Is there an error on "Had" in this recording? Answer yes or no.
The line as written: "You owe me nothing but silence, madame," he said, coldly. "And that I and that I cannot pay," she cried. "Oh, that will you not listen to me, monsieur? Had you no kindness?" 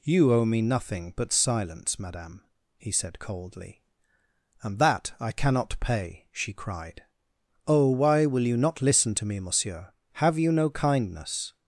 yes